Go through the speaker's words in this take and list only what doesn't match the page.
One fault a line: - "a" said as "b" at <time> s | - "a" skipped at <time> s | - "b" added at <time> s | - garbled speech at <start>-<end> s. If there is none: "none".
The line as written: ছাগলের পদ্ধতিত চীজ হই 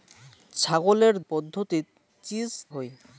none